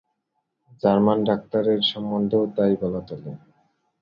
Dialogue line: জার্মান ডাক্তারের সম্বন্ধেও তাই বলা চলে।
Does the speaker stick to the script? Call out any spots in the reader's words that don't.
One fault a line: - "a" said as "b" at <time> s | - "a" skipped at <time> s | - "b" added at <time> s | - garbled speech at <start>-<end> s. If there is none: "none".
none